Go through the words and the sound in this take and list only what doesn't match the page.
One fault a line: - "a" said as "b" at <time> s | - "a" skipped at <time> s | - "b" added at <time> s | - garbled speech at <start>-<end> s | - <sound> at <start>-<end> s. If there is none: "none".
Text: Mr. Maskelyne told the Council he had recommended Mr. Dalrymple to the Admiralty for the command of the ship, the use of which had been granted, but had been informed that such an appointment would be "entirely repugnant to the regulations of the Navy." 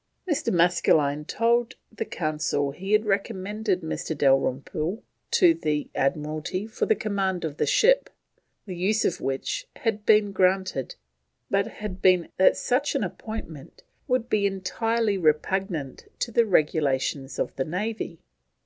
- "informed" skipped at 12.3 s